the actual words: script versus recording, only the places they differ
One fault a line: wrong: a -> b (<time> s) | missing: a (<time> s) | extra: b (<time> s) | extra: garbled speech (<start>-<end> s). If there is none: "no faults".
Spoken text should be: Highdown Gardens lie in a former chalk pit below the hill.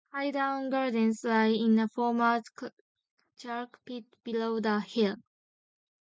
no faults